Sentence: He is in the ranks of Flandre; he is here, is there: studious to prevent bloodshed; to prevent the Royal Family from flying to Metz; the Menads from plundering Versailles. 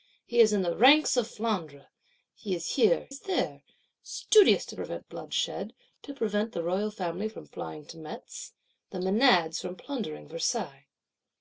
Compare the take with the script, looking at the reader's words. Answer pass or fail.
pass